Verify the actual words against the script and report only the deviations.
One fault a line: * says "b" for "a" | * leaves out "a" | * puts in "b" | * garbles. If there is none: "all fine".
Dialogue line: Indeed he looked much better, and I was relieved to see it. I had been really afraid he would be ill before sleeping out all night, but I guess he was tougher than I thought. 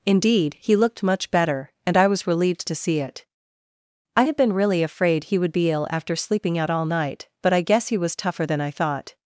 * says "after" for "before"